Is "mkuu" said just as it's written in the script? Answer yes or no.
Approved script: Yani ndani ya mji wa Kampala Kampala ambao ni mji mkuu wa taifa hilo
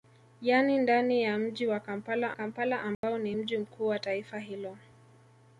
yes